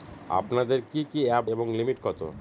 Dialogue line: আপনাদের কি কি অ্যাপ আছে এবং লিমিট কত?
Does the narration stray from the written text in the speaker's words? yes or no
yes